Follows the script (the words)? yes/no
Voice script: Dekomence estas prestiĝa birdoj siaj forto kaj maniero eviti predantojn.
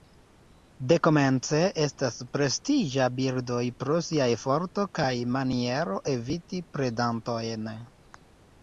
no